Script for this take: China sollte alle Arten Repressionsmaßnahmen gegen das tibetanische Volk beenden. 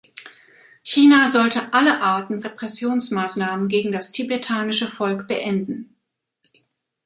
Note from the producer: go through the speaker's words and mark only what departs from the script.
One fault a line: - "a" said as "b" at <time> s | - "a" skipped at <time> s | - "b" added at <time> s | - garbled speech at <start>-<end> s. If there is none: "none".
none